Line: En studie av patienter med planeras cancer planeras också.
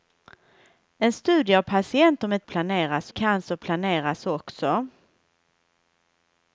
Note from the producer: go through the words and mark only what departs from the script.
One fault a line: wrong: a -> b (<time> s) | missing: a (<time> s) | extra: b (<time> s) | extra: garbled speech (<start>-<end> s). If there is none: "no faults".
no faults